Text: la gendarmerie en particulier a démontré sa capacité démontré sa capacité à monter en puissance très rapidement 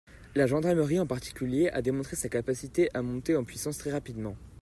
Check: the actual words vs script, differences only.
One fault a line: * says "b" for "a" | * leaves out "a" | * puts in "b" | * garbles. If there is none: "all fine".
* leaves out "démontré sa capacité"